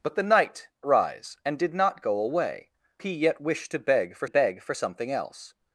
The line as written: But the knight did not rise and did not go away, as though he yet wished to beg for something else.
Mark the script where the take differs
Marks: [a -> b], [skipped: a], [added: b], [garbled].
But the knight [skipped: did not] rise and did not go away, [skipped: as though] he yet wished to beg for [added: beg for] something else.